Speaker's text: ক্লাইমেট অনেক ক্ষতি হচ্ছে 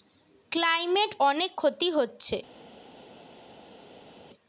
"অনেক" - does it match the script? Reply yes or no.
yes